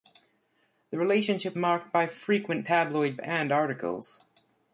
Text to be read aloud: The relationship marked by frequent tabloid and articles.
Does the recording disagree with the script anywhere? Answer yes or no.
no